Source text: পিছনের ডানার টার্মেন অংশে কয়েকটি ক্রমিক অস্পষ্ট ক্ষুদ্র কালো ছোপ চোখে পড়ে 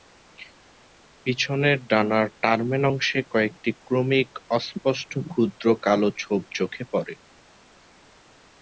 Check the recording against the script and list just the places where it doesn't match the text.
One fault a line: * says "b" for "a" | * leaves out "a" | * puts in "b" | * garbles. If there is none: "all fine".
all fine